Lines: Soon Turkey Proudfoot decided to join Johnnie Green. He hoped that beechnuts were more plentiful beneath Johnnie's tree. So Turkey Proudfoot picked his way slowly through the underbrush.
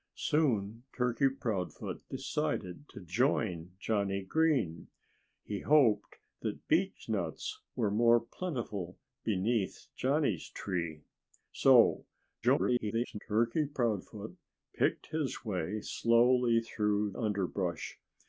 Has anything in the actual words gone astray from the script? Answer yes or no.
yes